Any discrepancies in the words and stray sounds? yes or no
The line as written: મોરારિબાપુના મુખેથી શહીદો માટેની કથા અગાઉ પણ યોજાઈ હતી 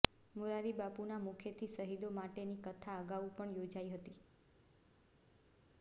no